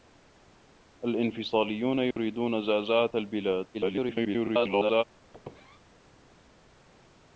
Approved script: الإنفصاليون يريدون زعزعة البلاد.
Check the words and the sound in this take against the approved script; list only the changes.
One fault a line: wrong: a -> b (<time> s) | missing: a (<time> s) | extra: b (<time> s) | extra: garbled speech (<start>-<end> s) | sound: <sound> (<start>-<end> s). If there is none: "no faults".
sound: dropout (2.1-2.2 s)
extra: garbled speech (3.7-5.0 s)
sound: squeak (5.3-5.8 s)